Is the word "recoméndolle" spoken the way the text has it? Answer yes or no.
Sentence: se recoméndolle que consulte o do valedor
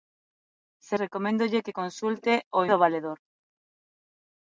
yes